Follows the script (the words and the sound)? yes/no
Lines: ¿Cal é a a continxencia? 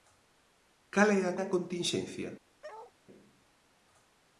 no